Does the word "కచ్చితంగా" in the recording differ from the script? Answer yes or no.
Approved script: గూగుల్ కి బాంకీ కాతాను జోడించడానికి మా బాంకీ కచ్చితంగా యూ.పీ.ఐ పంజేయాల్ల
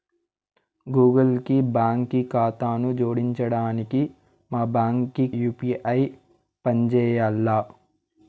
yes